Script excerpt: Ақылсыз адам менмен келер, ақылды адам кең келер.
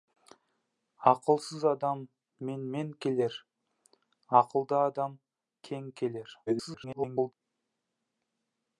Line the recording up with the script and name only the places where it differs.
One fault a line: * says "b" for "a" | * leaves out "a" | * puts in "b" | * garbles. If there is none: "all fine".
* garbles